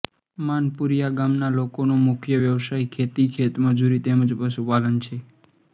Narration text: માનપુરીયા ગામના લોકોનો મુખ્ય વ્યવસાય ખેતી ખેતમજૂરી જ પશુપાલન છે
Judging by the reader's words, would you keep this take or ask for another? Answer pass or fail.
fail